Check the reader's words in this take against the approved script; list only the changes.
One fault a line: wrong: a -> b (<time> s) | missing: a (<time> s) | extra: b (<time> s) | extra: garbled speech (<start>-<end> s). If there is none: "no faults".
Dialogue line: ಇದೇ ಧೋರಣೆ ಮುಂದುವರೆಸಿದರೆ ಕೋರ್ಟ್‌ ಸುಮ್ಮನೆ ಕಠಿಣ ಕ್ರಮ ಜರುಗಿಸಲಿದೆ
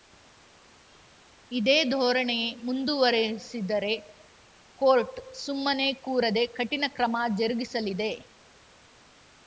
extra: ಕೂರದೆ (6.0 s)